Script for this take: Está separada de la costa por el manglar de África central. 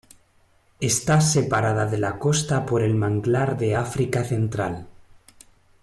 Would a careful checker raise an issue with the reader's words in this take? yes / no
no